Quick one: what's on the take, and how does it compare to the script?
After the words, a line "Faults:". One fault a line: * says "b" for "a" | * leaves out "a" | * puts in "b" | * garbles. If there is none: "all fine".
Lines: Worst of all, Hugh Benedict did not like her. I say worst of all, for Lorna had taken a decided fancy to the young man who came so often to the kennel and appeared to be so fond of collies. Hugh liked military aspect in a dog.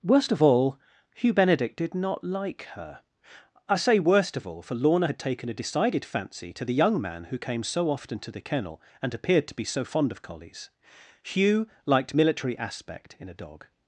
Worst of all, Hugh Benedict did not like her. I say worst of all, for Lorna had taken a decided fancy to the young man who came so often to the kennel and appeared to be so fond of collies. Hugh liked military aspect in a dog.
Faults:
all fine